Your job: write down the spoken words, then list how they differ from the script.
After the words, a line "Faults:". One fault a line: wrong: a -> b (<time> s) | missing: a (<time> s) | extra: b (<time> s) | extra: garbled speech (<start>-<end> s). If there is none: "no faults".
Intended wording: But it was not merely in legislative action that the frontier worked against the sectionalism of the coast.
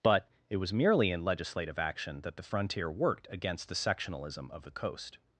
But it was merely in legislative action that the frontier worked against the sectionalism of the coast.
Faults:
missing: not (0.7 s)